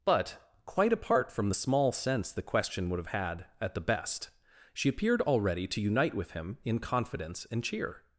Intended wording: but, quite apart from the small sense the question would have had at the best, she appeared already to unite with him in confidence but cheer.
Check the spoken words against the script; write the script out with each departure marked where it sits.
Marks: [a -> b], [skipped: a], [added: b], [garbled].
but, quite apart from the small sense the question would have had at the best, she appeared already to unite with him in confidence [but -> and] cheer.